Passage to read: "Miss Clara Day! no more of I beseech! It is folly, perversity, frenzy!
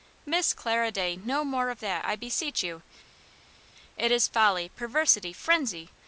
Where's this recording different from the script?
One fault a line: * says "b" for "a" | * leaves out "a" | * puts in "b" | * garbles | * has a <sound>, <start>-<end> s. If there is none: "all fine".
* puts in "that"
* puts in "you"